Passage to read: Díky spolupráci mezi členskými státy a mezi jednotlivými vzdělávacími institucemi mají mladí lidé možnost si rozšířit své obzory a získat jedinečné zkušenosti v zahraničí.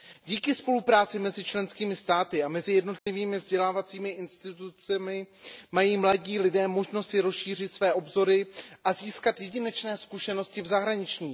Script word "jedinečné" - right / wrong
right